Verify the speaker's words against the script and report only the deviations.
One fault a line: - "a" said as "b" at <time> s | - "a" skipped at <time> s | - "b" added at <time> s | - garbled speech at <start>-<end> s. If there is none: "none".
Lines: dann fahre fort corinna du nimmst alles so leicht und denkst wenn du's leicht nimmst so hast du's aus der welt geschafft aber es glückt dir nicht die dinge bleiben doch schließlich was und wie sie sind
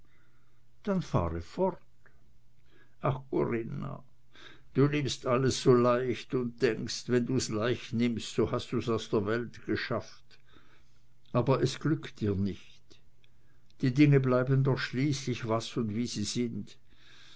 - "ach" added at 3.0 s